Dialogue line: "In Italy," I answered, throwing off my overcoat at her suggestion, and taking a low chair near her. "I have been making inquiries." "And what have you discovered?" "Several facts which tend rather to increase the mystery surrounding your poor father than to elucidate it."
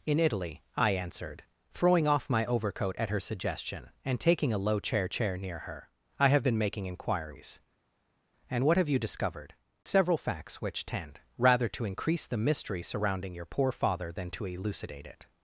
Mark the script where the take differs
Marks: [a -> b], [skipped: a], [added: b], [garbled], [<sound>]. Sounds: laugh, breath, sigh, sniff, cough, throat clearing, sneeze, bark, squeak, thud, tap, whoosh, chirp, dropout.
"In Italy," I answered, throwing off my overcoat at her suggestion, and taking a low chair [added: chair] near her. "I have been making inquiries." "And what have you discovered?" "Several facts which tend rather to increase the mystery surrounding your poor father than to elucidate it."